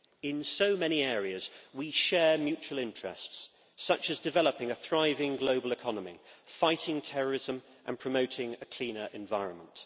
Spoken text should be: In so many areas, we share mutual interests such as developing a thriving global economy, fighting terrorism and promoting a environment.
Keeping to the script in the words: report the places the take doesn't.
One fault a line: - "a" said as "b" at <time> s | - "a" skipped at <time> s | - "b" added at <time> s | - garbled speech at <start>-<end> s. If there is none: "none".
- "cleaner" added at 8.7 s